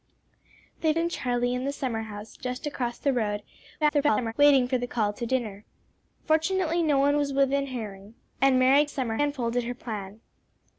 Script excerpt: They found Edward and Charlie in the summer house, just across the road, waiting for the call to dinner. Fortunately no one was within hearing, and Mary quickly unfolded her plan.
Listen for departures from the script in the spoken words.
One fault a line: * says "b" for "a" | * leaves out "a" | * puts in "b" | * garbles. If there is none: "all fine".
* leaves out "found Edward"
* garbles
* says "summer" for "quickly"